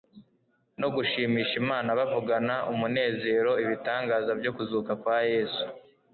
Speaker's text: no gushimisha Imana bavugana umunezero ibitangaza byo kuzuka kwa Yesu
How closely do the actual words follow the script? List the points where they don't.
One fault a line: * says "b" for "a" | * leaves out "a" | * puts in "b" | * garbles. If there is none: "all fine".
all fine